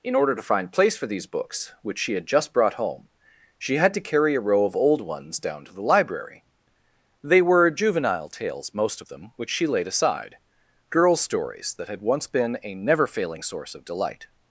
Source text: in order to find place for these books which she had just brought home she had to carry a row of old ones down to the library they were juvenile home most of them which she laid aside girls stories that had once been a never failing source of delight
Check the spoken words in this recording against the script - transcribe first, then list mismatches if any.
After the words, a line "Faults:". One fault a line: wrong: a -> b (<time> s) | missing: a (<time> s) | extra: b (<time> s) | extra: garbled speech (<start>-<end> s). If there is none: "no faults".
in order to find place for these books which she had just brought home she had to carry a row of old ones down to the library they were juvenile tales most of them which she laid aside girls stories that had once been a never failing source of delight
Faults:
wrong: home -> tales (8.3 s)